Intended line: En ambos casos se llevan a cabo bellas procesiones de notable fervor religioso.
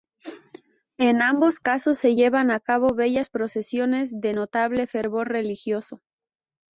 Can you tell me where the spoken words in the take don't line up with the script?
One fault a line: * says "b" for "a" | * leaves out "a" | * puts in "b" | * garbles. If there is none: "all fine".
all fine